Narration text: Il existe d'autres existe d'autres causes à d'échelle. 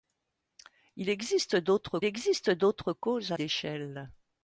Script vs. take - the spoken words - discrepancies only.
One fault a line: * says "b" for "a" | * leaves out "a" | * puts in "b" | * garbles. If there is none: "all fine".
all fine